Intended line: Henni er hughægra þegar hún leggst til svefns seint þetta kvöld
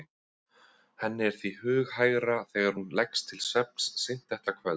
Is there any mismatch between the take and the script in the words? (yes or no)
yes